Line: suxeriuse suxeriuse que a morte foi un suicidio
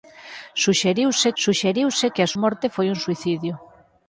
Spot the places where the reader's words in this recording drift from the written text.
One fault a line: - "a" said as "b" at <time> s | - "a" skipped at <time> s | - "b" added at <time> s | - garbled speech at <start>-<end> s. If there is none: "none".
none